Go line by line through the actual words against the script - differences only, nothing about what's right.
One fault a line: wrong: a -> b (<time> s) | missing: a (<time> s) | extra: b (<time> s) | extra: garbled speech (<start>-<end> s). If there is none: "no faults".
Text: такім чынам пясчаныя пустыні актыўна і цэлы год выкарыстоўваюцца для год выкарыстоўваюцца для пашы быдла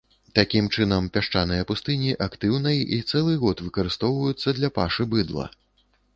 missing: год выкарыстоўваюцца для (4.7 s)